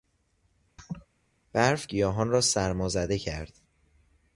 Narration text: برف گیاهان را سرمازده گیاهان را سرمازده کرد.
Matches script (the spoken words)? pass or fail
fail